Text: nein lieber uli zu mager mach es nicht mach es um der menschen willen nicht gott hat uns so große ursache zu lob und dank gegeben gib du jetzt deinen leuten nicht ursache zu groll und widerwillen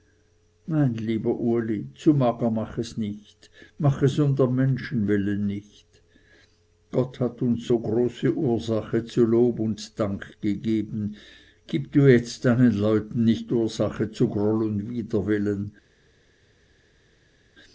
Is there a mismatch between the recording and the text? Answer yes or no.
no